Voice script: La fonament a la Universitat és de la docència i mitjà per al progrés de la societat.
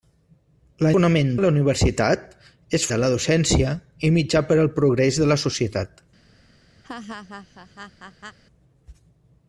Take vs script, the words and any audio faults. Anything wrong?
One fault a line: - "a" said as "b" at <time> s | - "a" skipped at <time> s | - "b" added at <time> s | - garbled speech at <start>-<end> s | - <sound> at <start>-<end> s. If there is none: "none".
- laugh at 6.8-8.4 s